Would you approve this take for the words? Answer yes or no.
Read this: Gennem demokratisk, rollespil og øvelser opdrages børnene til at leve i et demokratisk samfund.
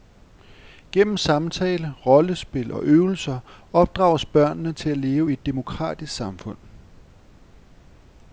no